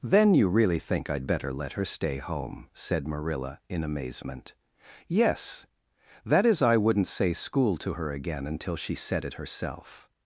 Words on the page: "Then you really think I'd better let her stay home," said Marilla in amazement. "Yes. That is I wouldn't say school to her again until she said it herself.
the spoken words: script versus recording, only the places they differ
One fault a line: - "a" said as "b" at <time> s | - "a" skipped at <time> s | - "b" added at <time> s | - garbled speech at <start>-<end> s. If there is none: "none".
none